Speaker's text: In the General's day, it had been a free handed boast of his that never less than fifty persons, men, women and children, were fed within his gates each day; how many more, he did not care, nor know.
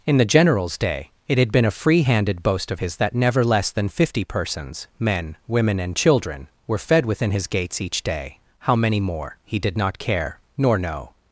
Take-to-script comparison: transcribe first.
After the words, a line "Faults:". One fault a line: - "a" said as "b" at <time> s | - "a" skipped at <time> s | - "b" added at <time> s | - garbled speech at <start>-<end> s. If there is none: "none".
In the General's day, it had been a free handed boast of his that never less than fifty persons, men, women and children, were fed within his gates each day; how many more, he did not care, nor know.
Faults:
none